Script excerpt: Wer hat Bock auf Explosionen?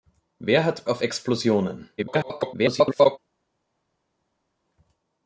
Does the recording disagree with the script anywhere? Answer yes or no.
yes